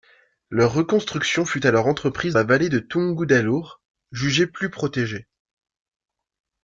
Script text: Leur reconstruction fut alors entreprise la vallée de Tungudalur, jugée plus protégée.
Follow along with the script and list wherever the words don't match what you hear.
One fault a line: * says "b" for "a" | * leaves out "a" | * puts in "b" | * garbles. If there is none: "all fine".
all fine